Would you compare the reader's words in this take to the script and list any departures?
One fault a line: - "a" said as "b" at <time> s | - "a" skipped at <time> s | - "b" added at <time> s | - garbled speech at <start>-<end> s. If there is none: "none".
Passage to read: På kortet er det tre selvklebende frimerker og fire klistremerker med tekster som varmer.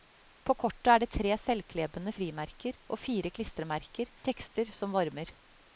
- "med" skipped at 4.1 s